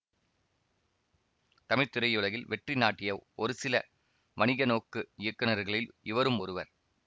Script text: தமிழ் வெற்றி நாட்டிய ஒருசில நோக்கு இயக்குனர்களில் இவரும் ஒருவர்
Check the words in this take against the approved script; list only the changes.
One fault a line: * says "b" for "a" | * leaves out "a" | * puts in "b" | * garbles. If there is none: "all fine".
* puts in "திரையுலகில்"
* puts in "வணிக"